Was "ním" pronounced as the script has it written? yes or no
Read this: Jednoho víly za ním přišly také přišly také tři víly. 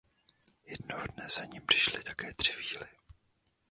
yes